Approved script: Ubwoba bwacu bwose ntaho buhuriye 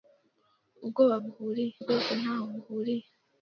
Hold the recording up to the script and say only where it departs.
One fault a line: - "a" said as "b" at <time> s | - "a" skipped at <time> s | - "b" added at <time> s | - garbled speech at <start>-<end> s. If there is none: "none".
- "bwacu" said as "buhuriye" at 1.2 s